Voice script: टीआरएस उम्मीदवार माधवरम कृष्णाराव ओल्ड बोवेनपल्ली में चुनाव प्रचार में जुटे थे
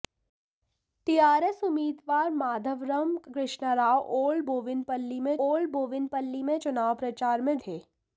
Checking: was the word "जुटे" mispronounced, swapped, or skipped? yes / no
yes